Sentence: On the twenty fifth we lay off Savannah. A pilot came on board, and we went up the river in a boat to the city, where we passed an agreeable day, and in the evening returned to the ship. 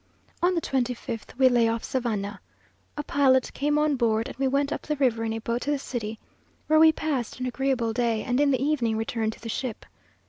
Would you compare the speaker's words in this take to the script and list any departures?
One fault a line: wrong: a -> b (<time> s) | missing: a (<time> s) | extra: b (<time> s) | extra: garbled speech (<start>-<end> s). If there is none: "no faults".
no faults